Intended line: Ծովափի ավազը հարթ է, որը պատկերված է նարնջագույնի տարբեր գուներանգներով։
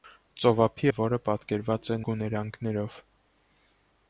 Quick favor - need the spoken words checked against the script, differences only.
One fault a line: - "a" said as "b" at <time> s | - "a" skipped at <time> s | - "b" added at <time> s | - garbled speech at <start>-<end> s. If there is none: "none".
- "ավազը հարթ" skipped at 0.9 s
- "նարնջագույնի տարբեր" skipped at 2.0 s